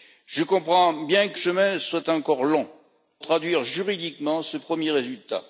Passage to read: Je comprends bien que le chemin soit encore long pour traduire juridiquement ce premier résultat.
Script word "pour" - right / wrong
wrong